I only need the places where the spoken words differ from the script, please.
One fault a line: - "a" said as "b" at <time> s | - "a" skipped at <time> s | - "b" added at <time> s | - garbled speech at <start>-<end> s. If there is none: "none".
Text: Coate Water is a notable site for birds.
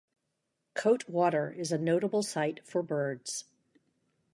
none